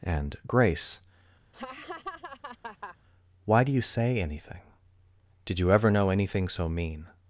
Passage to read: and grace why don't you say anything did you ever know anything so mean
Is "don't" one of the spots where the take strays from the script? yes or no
yes